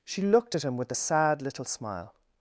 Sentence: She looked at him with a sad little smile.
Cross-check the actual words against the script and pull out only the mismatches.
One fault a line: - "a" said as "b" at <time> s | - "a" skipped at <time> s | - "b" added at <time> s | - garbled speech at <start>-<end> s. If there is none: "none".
none